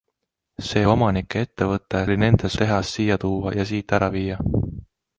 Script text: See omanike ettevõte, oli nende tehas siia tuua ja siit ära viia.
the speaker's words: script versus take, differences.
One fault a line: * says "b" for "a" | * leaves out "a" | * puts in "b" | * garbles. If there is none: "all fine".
all fine